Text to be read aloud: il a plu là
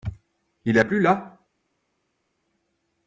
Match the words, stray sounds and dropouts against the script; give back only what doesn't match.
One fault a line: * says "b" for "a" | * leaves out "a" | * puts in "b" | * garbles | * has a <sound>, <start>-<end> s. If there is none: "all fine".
all fine